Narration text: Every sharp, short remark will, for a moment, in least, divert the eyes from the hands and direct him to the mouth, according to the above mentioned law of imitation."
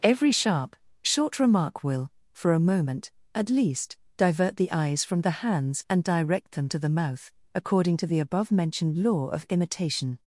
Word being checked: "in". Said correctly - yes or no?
no